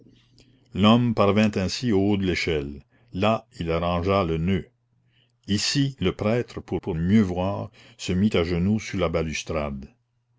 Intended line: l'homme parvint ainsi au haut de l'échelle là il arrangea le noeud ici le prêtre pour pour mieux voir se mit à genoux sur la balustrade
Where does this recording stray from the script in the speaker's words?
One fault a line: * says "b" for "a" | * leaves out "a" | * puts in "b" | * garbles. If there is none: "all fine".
all fine